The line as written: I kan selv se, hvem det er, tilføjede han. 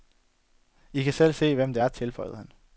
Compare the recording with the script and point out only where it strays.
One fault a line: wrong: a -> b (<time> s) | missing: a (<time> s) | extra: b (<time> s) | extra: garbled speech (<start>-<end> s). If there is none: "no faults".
no faults